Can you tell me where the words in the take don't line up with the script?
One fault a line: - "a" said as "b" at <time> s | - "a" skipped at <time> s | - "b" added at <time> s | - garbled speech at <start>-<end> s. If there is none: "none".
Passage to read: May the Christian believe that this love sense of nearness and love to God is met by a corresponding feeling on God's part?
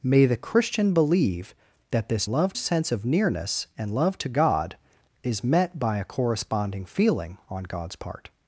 none